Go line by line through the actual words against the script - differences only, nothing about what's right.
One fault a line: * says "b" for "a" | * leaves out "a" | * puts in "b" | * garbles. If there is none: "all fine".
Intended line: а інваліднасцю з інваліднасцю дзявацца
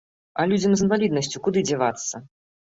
* says "людзям" for "інваліднасцю"
* puts in "куды"